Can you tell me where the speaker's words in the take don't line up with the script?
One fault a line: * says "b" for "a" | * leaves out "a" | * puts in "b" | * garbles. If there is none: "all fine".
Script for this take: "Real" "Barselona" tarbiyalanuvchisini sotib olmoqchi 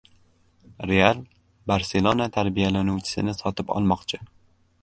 all fine